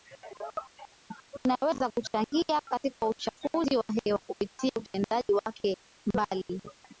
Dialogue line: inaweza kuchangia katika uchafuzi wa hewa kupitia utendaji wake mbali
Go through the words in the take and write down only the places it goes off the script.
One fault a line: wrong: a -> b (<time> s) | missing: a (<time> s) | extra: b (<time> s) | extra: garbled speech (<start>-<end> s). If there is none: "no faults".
no faults